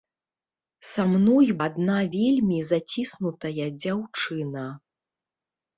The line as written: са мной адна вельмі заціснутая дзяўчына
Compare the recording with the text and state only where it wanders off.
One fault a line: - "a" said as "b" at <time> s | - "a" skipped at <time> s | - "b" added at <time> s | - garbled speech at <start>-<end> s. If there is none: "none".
none